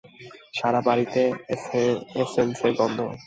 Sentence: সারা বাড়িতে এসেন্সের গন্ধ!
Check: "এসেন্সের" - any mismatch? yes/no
no